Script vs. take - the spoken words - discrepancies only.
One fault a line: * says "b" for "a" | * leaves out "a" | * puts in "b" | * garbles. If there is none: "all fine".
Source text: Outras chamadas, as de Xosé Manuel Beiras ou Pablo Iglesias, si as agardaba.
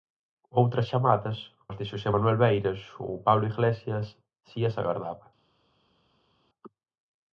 all fine